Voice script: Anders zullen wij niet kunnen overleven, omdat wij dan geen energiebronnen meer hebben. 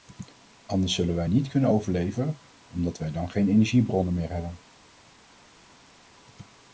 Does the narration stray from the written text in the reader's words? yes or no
no